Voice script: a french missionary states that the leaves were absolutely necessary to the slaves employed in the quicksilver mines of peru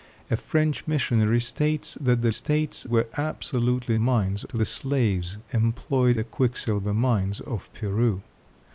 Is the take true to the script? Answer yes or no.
no